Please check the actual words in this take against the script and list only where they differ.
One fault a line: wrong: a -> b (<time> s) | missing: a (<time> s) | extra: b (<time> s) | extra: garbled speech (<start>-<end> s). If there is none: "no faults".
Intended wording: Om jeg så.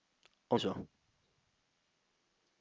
no faults